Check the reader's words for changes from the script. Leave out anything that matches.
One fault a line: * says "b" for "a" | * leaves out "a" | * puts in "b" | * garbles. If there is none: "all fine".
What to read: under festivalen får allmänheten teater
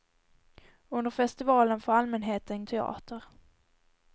all fine